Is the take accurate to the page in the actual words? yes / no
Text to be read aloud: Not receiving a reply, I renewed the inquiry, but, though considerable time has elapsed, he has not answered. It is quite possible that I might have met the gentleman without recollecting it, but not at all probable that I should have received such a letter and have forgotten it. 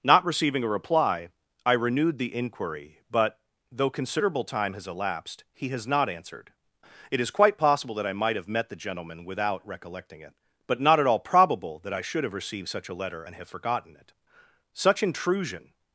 no